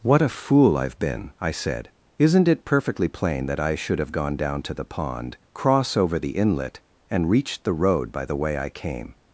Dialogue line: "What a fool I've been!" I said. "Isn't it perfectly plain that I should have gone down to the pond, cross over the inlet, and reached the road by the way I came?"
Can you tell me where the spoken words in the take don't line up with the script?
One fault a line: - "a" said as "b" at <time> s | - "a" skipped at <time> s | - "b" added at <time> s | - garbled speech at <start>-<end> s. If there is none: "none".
none